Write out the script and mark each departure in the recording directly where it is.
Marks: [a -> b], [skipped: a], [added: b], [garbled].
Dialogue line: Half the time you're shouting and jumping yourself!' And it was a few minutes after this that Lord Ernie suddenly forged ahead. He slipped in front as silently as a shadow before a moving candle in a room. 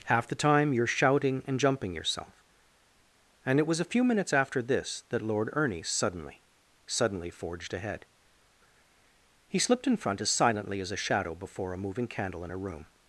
Half the time you're shouting and jumping yourself!' And it was a few minutes after this that Lord Ernie suddenly [added: suddenly] forged ahead. He slipped in front as silently as a shadow before a moving candle in a room.